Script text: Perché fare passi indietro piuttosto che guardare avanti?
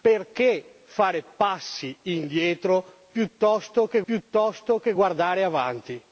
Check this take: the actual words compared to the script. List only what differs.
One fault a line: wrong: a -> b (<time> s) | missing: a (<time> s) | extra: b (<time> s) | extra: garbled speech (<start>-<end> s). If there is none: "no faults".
extra: piuttosto che (4.0 s)